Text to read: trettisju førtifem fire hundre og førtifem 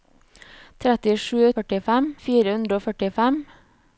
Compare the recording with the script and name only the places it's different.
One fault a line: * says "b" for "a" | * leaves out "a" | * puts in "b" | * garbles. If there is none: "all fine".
all fine